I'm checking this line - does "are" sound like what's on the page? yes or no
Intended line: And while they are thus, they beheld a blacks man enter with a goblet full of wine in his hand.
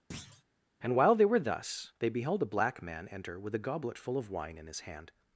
no